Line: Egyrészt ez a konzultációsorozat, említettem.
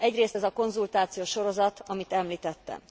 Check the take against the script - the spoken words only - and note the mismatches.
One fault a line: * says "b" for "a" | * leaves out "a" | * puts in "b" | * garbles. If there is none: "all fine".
* puts in "amit"